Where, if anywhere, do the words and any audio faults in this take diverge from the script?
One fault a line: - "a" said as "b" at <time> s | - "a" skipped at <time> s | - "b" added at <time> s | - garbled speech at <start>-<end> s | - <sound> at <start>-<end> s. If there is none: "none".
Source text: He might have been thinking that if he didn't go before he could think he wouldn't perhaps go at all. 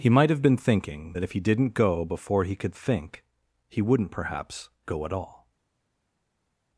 none